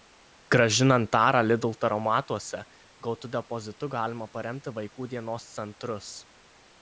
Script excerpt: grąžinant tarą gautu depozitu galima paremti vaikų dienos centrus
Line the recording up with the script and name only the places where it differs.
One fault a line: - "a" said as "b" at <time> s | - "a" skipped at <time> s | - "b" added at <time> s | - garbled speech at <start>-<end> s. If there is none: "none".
- "lidl taromatuose" added at 1.5 s